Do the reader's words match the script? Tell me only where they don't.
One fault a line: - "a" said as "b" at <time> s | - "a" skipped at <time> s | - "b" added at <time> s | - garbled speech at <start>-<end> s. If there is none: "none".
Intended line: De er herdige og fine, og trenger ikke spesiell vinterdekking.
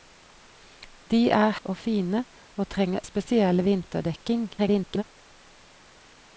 - "herdige" skipped at 1.5 s
- "ikke" skipped at 3.0 s
- garbled speech at 4.6-5.0 s